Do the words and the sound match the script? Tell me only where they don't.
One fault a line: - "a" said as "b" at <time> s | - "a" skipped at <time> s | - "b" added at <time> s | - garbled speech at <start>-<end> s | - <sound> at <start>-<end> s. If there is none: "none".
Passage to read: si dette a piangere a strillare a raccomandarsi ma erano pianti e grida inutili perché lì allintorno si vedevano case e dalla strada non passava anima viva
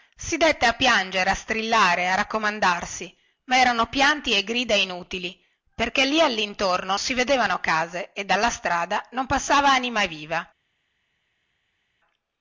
none